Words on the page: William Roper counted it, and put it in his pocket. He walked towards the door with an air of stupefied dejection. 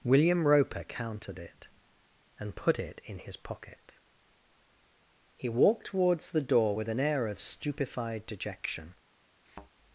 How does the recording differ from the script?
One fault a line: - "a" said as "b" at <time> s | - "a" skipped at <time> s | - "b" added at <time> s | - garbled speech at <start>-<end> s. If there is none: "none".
none